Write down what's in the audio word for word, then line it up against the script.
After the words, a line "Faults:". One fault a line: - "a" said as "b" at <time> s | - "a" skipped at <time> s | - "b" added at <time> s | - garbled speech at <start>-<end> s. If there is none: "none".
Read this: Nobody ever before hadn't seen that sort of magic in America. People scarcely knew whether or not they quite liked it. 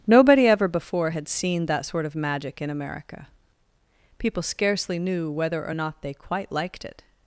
Nobody ever before had seen that sort of magic in America. People scarcely knew whether or not they quite liked it.
Faults:
- "hadn't" said as "had" at 1.1 s